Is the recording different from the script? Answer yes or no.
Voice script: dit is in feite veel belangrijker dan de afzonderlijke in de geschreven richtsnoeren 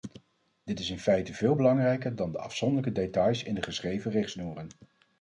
yes